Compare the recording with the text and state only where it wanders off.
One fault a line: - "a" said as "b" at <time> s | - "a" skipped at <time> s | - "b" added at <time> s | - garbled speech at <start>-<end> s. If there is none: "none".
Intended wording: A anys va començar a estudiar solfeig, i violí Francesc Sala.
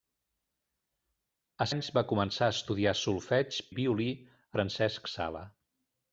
none